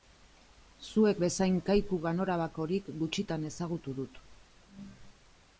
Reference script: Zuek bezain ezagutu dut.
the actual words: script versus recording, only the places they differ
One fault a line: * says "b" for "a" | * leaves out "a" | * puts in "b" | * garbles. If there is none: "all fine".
* puts in "kaiku ganorabakorik gutxitan"